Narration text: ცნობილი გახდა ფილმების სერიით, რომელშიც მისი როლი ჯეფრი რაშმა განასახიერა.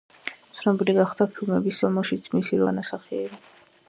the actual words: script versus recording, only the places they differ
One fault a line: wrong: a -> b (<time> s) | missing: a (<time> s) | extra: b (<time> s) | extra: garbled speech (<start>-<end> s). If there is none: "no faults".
missing: სერიით (1.8 s)
missing: როლი ჯეფრი რაშმა (2.6 s)